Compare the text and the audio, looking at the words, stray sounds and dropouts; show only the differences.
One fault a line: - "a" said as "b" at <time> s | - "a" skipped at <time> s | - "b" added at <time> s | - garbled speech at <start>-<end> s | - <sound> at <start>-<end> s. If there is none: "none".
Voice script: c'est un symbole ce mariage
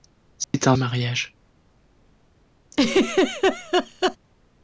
- dropout at 0.4-0.5 s
- "symbole ce" skipped at 0.8 s
- laugh at 2.7-4.2 s